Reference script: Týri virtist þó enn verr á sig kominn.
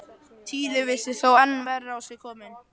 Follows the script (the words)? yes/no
yes